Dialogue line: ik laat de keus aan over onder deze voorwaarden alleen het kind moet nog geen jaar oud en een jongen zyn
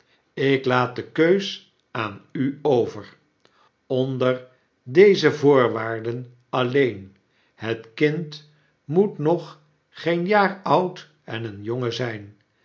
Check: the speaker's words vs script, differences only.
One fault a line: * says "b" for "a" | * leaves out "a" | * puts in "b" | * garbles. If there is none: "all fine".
* puts in "u"